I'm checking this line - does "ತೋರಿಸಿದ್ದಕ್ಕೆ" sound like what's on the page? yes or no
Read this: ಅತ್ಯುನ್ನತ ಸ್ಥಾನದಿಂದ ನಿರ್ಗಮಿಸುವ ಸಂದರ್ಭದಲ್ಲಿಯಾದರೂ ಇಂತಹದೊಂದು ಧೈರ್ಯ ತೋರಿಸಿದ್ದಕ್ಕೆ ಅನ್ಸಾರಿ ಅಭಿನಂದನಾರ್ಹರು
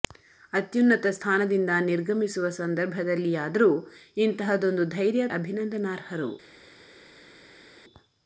no